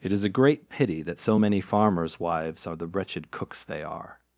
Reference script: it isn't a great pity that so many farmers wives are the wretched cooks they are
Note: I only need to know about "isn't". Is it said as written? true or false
false